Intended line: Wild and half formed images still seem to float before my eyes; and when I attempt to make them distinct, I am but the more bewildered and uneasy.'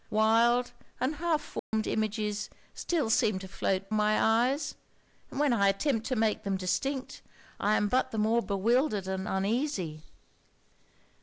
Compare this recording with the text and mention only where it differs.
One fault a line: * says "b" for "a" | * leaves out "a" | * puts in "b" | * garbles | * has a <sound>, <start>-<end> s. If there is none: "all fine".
* has a dropout, 1.6-1.7 s
* leaves out "before"